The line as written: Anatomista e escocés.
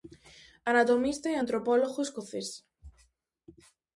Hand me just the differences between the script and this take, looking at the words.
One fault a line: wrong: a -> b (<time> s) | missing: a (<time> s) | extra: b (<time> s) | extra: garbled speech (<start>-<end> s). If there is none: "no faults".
extra: antropólogo (1.4 s)